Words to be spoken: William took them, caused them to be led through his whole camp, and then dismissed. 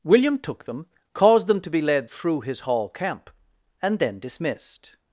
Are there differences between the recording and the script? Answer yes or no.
yes